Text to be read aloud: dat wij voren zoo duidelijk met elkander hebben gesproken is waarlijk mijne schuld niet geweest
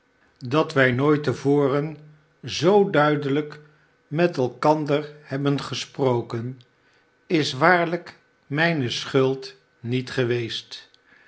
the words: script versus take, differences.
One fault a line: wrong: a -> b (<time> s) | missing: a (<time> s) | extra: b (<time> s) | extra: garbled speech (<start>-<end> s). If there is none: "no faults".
extra: nooit te (0.9 s)